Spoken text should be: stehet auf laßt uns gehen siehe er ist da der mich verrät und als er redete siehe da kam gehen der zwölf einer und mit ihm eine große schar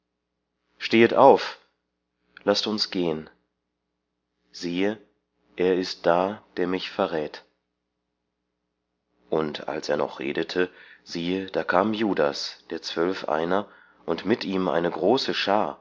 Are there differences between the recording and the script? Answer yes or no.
yes